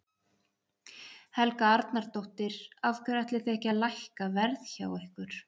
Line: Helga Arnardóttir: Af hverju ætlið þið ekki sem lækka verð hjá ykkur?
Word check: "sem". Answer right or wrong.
wrong